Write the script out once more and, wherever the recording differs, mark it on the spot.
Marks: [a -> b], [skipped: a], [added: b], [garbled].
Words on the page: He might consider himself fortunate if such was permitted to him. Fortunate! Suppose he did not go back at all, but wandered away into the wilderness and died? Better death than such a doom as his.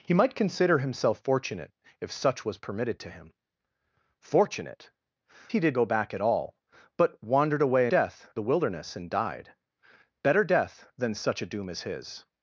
He might consider himself fortunate if such was permitted to him. Fortunate! [skipped: Suppose] he did [skipped: not] go back at all, but wandered away [into -> death] the wilderness and died? Better death than such a doom as his.